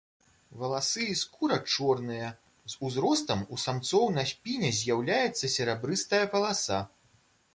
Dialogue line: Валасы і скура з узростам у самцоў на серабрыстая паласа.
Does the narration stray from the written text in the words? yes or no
yes